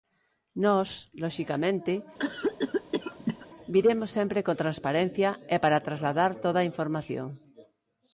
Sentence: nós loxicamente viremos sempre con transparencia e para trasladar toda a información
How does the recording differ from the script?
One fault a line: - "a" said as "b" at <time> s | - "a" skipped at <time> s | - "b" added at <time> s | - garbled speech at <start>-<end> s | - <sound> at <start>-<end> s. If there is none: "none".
- cough at 2.2-3.5 s